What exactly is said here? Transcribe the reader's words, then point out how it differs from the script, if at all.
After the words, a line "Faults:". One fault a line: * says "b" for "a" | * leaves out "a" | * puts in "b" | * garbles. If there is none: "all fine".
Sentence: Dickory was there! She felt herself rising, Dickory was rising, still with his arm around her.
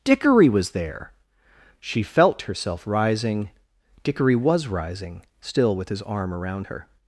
Dickory was there! She felt herself rising, Dickory was rising, still with his arm around her.
Faults:
all fine